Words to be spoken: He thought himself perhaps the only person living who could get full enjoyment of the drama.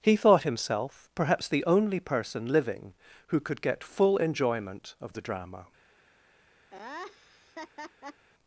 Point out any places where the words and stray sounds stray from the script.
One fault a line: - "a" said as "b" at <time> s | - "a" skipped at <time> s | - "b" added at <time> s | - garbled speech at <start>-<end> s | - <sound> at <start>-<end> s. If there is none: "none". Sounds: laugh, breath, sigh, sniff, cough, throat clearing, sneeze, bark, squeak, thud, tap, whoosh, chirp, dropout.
- laugh at 6.7-8.3 s